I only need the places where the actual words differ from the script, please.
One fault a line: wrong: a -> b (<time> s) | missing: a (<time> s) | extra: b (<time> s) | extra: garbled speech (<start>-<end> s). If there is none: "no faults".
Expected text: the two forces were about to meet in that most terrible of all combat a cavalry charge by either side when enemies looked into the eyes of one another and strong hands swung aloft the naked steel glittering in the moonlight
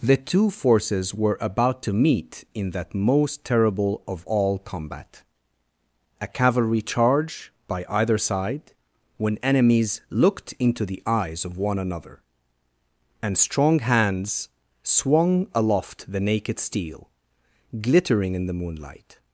no faults